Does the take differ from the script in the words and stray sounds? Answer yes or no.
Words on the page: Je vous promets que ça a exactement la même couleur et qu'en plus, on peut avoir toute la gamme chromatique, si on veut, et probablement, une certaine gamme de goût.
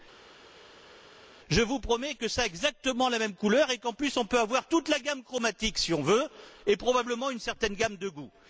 no